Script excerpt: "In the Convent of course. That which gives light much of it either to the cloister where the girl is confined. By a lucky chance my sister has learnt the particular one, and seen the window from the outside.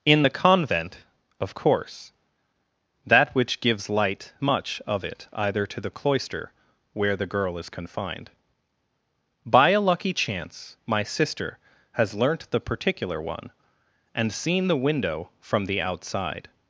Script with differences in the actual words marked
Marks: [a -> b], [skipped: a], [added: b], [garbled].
"In the Convent of course. That which gives light much of it either to the cloister where the girl is confined. By a lucky chance my sister has learnt the particular one, and seen the window from the outside.